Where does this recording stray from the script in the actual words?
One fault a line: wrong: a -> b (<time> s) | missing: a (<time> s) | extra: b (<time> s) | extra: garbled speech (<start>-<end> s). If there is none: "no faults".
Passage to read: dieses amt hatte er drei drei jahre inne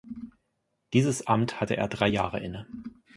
missing: drei (2.1 s)